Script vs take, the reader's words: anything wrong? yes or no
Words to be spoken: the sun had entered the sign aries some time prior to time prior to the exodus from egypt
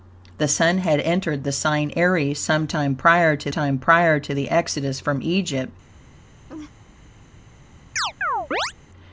no